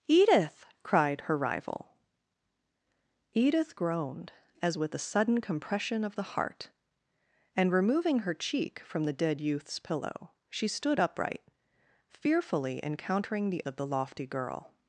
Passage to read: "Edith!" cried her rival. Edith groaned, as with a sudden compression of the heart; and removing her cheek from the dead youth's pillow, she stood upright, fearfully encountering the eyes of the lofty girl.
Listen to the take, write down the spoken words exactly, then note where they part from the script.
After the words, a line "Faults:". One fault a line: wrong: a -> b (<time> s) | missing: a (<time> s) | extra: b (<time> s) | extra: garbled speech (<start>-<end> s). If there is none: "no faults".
"Edith!" cried her rival. Edith groaned, as with a sudden compression of the heart; and removing her cheek from the dead youth's pillow, she stood upright, fearfully encountering the of the lofty girl.
Faults:
missing: eyes (13.6 s)